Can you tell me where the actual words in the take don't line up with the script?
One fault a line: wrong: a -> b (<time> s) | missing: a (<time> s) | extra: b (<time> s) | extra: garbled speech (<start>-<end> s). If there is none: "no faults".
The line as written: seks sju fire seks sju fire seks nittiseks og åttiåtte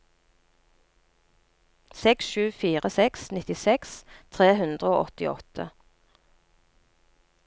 wrong: sju fire seks nittiseks -> nittiseks tre hundre (3.4 s)